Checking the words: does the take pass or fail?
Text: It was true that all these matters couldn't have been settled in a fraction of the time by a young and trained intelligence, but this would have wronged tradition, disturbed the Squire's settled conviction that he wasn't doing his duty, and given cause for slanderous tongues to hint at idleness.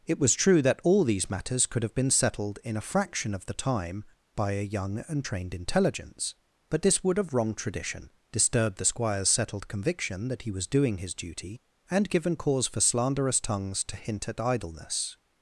fail